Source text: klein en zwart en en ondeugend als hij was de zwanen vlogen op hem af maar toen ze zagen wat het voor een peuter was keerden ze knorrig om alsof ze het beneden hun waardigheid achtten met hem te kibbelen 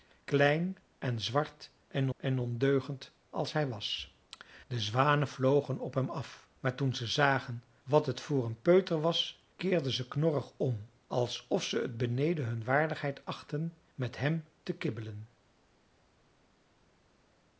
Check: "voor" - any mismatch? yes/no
no